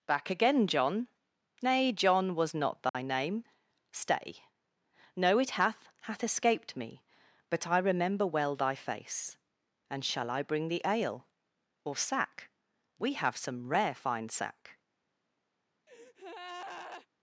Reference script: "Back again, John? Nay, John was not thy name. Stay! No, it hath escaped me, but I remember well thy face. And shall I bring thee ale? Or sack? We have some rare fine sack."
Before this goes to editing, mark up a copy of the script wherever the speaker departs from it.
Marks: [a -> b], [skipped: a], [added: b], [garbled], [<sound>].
"Back again, John? Nay, John was not thy [dropout] name. Stay! No, it hath [added: hath] escaped me, but I remember well thy face. And shall I bring thee ale? Or sack? We have some rare fine sack." [breath]